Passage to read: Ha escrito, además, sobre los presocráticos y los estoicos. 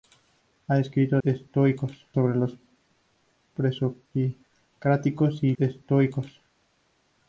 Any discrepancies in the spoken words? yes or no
yes